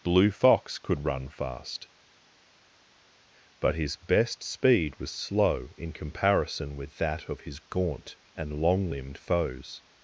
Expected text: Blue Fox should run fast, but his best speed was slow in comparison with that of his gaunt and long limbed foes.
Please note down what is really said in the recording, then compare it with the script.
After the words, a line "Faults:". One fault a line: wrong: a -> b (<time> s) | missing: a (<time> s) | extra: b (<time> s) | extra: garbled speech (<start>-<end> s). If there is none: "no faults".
Blue Fox could run fast, but his best speed was slow in comparison with that of his gaunt and long limbed foes.
Faults:
wrong: should -> could (0.8 s)